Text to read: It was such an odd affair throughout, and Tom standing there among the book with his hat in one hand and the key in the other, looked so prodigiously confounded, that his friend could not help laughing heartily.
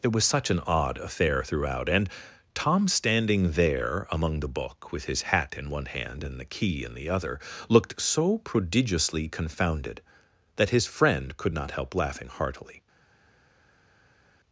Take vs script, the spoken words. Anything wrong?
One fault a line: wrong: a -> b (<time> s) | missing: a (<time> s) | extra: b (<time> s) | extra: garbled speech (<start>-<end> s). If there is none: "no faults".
no faults